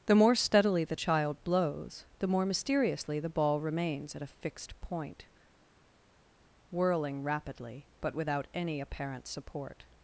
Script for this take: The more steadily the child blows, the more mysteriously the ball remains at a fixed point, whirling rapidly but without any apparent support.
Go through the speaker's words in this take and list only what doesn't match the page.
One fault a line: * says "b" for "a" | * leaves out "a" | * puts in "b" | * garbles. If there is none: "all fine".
all fine